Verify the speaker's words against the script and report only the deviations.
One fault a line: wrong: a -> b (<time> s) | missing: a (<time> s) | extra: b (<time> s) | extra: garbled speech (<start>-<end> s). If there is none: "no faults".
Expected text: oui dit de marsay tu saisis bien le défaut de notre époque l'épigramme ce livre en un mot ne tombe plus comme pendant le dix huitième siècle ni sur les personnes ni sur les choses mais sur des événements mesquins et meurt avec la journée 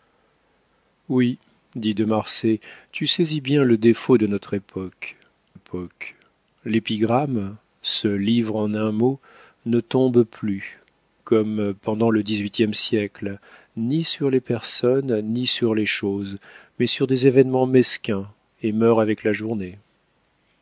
extra: époque (5.5 s)